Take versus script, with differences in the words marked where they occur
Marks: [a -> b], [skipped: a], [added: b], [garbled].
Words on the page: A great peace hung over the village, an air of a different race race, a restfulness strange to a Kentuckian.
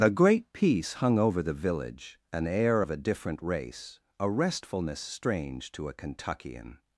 A great peace hung over the village, an air of a different race [skipped: race,] a restfulness strange to a Kentuckian.